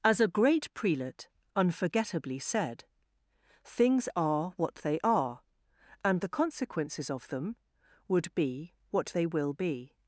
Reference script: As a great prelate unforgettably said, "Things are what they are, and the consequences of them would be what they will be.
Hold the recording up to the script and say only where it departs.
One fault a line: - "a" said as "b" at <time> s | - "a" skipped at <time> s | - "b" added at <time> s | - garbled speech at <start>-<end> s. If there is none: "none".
none